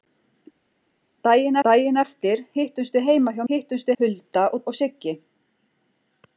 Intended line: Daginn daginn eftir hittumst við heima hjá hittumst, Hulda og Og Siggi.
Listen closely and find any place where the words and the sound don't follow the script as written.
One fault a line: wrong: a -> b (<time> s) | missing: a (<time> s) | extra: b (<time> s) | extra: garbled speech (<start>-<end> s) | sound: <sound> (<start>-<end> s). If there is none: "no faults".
no faults